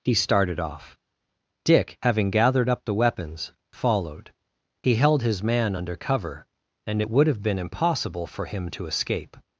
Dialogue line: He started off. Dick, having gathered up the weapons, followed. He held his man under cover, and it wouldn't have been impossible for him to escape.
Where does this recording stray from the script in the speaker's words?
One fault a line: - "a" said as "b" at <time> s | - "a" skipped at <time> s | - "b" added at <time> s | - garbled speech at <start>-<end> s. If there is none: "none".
- "wouldn't" said as "would" at 7.1 s